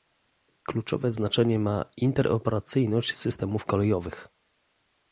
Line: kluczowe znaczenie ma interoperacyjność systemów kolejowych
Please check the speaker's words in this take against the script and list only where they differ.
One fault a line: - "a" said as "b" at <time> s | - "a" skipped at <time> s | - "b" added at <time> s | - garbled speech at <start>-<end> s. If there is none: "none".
none